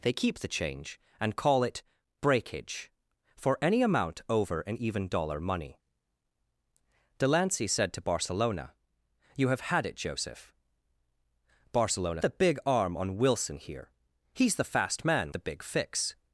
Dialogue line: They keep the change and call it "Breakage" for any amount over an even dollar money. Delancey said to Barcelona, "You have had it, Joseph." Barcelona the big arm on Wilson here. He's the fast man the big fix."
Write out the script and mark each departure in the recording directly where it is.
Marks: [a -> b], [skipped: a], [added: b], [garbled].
They keep the change and call it "Breakage" for any amount over an even dollar money. Delancey said to Barcelona, "You have had it, Joseph." Barcelona the big arm on Wilson here. He's the fast man the big fix."